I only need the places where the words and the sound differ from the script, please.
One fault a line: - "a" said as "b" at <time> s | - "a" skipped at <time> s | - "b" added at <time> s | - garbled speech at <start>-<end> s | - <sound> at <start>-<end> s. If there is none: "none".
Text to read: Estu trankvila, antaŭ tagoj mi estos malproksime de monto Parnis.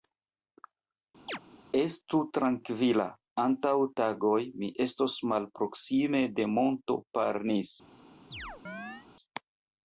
- chirp at 1.3-1.4 s
- chirp at 8.3-9.1 s